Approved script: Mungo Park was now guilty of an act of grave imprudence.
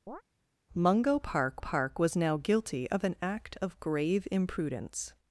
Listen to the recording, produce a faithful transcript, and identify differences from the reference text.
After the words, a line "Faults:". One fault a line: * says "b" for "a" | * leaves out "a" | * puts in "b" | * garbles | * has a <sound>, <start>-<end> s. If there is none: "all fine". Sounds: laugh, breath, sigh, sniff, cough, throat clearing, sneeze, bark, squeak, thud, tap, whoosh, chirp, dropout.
Mungo Park Park was now guilty of an act of grave imprudence.
Faults:
* has a chirp, 0.1-0.2 s
* puts in "Park"